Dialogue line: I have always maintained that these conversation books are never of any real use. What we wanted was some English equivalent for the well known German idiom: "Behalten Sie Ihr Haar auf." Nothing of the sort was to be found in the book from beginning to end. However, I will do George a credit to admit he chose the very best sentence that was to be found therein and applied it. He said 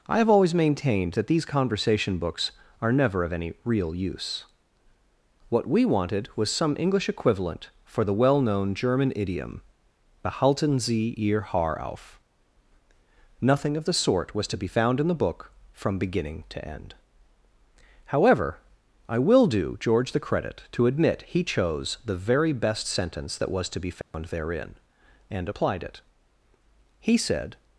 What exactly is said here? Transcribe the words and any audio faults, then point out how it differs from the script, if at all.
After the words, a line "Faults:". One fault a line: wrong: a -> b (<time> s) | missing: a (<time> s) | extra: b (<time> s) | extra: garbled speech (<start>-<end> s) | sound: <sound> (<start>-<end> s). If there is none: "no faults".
I have always maintained that these conversation books are never of any real use. What we wanted was some English equivalent for the well known German idiom: "Behalten Sie Ihr Haar auf." Nothing of the sort was to be found in the book from beginning to end. However, I will do George the credit to admit he chose the very best sentence that was to be found therein and applied it. He said
Faults:
wrong: a -> the (20.1 s)
sound: dropout (24.0-24.1 s)